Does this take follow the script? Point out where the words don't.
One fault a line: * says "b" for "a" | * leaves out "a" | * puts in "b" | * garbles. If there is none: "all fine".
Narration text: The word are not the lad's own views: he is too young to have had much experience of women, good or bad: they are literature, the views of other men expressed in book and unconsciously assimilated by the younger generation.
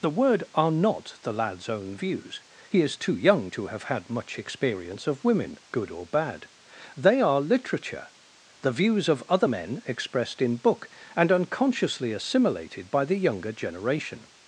all fine